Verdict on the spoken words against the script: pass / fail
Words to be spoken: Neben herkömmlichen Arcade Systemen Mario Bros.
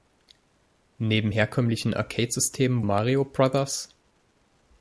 pass